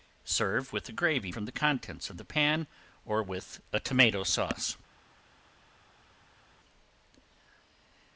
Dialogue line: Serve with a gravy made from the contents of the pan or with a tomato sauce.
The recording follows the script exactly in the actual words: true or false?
false